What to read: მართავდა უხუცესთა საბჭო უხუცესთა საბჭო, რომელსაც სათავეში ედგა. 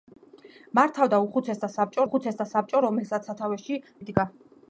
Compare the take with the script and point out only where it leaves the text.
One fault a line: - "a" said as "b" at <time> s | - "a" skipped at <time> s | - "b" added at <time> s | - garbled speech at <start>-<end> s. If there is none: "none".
none